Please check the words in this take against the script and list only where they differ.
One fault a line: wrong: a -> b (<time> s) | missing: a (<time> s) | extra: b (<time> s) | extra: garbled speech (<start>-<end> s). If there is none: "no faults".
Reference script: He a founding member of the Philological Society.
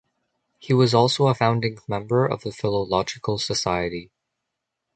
extra: was also (0.7 s)